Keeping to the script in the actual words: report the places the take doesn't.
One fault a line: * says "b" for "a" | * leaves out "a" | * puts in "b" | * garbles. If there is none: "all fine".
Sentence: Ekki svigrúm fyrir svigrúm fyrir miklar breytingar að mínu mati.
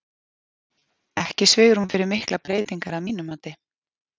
* leaves out "svigrúm fyrir"